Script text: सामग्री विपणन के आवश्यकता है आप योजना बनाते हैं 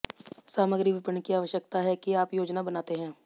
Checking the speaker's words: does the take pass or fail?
fail